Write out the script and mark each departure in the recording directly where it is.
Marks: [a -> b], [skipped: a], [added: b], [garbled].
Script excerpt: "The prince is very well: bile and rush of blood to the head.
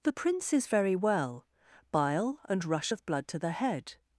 "The prince is very well: bile and rush of blood to the head.